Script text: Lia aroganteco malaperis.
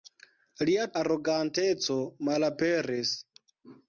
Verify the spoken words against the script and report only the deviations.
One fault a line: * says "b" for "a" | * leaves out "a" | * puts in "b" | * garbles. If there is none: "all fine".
all fine